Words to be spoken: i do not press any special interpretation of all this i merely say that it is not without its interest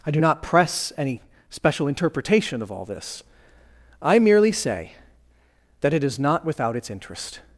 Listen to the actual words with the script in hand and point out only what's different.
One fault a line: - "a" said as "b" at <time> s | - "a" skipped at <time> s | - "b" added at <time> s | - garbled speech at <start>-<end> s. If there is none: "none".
none